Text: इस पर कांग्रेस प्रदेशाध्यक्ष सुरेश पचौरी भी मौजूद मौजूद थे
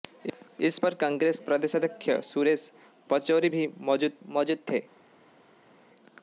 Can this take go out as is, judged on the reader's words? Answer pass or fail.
pass